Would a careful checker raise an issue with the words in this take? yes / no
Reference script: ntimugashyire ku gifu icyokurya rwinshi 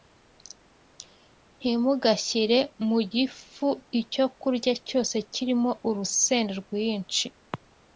yes